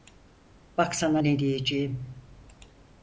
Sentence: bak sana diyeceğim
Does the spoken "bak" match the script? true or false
true